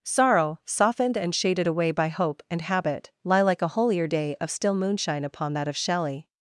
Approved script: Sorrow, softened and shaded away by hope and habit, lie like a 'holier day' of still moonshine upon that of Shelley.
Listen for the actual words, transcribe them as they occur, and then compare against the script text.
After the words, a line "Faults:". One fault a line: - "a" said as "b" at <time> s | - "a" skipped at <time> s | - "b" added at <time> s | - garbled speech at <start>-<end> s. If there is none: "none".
Sorrow, softened and shaded away by hope and habit, lie like a 'holier day' of still moonshine upon that of Shelley.
Faults:
none